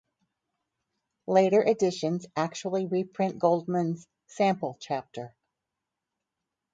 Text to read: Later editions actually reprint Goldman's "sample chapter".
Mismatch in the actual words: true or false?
false